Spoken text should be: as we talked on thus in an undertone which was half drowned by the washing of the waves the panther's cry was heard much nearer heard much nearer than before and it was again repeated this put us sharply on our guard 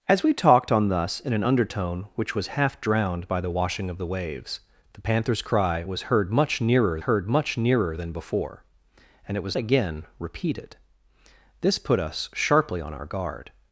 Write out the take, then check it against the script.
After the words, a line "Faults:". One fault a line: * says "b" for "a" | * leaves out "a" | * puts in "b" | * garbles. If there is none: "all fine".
as we talked on thus in an undertone which was half drowned by the washing of the waves the panther's cry was heard much nearer heard much nearer than before and it was again repeated this put us sharply on our guard
Faults:
all fine